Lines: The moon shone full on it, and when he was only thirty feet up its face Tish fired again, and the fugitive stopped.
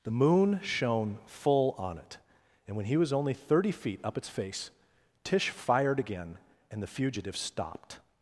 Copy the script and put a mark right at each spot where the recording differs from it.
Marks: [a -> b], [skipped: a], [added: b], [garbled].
The moon shone full on it, and when he was only thirty feet up its face Tish fired again, and the fugitive stopped.